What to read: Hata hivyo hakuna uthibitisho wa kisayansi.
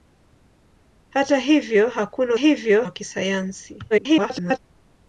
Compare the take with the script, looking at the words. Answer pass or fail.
fail